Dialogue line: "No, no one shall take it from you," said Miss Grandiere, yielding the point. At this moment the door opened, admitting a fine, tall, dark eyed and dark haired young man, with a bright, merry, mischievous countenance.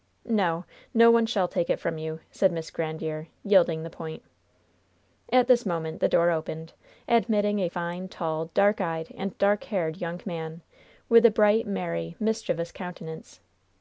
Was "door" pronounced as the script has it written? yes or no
yes